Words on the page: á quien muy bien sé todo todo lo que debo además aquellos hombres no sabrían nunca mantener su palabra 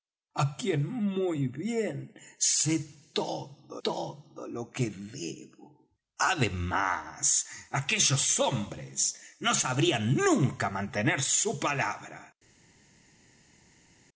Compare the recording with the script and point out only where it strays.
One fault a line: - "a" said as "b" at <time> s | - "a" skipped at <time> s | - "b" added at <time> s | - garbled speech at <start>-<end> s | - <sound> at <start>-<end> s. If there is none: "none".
none